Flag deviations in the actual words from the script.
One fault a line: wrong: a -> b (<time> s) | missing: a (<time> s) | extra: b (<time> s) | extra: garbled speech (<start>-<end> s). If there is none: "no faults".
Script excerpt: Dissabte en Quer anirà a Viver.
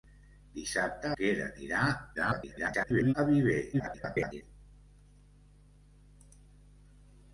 missing: en (1.1 s)
extra: garbled speech (2.1-3.1 s)
extra: garbled speech (3.7-4.4 s)